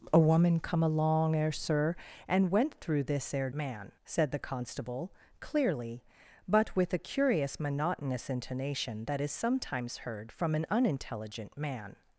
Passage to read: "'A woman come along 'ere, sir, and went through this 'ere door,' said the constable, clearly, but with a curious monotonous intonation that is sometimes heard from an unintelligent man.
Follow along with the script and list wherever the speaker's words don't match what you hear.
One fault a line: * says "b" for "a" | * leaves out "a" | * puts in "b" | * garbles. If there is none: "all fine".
* says "man" for "door"